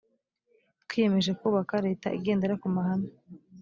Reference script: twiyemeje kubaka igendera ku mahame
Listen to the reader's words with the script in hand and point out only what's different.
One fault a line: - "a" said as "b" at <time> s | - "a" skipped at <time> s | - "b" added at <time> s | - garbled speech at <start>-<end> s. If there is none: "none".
- "leta" added at 1.9 s